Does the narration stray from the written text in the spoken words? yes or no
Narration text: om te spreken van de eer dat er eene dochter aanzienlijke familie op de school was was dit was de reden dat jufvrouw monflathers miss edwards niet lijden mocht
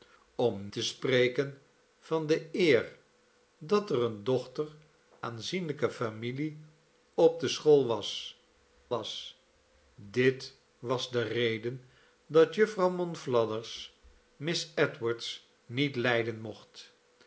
no